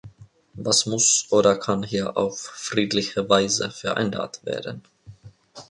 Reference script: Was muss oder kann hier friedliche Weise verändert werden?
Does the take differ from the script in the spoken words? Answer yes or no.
yes